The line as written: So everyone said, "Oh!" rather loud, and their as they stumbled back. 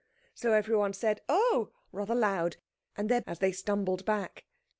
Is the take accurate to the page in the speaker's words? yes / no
yes